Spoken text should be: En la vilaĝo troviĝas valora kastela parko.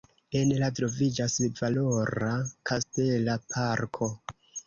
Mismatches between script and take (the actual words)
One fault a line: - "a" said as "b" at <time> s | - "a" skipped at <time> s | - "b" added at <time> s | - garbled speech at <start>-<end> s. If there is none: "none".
- "vilaĝo" skipped at 0.7 s